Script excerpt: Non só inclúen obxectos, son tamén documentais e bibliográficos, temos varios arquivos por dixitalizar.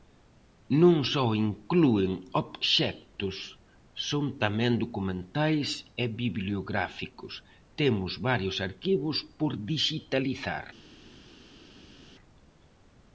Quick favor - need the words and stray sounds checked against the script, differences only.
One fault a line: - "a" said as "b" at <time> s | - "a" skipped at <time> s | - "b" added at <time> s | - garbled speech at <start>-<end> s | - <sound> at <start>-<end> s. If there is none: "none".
none